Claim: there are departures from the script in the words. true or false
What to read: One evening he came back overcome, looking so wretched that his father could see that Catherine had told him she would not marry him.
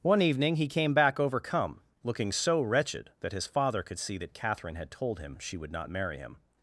false